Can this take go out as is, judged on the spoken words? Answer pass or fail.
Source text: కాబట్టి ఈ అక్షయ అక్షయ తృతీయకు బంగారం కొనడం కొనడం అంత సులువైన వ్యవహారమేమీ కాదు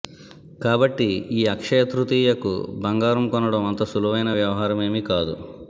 fail